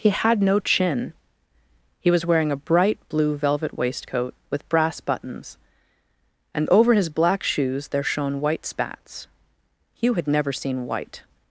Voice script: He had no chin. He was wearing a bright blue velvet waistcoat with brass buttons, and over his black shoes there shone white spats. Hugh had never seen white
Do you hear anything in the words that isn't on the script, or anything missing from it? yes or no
no